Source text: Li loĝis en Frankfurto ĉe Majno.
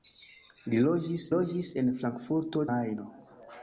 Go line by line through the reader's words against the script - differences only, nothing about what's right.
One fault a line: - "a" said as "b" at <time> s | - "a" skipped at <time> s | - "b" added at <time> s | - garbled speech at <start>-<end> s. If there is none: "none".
- "loĝis" added at 1.3 s
- "ĉe" skipped at 2.7 s